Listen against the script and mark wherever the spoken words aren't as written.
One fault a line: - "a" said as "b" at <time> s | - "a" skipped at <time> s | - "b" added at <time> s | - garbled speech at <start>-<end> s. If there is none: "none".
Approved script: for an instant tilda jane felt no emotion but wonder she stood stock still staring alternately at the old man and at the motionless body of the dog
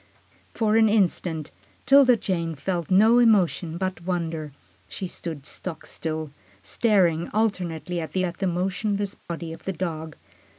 - "old man and" skipped at 8.2 s